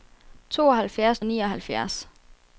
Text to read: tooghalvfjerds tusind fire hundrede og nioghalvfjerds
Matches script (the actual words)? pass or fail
fail